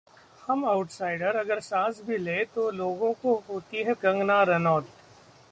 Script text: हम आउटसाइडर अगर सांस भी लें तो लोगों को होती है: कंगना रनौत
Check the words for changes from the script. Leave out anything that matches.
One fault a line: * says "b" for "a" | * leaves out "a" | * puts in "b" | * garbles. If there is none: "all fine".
all fine